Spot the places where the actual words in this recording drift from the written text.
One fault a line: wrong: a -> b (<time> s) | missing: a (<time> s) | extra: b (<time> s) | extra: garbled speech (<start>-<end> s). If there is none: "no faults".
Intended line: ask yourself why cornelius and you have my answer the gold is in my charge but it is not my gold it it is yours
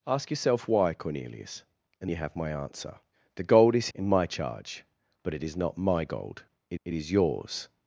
no faults